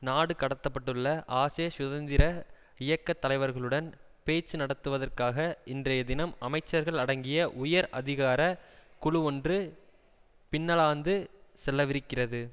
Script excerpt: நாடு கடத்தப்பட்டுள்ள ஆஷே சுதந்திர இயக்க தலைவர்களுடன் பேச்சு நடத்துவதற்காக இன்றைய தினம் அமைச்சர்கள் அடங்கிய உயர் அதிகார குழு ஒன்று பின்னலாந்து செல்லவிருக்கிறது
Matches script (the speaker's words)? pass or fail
pass